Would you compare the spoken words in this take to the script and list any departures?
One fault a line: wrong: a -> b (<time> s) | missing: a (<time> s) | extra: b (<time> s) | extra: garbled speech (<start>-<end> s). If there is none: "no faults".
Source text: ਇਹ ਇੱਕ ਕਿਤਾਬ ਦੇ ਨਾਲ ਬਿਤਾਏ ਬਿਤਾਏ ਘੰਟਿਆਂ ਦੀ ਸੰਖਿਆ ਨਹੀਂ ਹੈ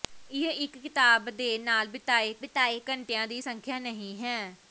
no faults